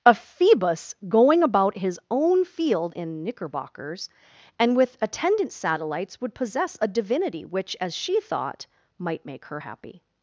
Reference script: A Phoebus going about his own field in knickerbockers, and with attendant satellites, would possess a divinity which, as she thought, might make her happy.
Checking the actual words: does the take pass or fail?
pass